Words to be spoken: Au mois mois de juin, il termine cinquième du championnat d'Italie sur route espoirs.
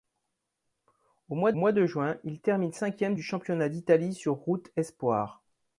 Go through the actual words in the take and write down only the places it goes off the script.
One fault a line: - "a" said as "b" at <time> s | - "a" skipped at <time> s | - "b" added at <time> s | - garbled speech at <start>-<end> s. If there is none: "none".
none